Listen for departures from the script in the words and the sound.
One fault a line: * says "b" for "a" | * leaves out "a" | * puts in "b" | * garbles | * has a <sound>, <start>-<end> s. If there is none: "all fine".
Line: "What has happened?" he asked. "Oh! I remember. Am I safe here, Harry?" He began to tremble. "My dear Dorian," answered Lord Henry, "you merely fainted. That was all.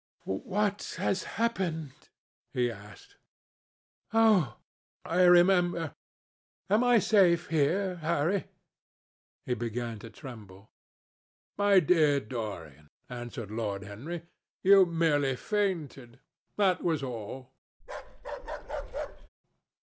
* has a bark, 17.8-19.3 s